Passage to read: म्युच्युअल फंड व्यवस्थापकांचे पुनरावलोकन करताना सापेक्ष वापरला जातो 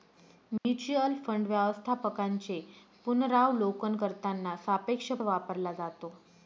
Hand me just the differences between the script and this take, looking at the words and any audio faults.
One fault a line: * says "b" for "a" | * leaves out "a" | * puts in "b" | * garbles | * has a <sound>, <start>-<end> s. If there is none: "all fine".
* has a dropout, 0.6-0.6 s